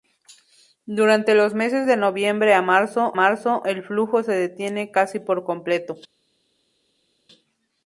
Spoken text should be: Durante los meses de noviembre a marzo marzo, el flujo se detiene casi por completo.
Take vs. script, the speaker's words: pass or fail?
pass